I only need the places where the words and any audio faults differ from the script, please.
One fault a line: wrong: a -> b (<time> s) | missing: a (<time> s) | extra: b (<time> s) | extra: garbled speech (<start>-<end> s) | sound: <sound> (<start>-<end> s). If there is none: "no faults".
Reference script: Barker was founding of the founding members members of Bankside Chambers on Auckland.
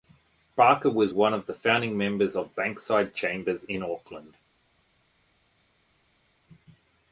wrong: founding -> one (1.1 s)
missing: members (2.4 s)
wrong: on -> in (3.6 s)